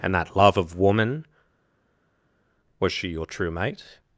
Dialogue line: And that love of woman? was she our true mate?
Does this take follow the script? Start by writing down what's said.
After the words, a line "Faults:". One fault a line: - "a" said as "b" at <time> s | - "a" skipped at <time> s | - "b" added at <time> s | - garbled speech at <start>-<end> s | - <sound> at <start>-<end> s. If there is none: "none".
And that love of woman? was she your true mate?
Faults:
- "our" said as "your" at 3.1 s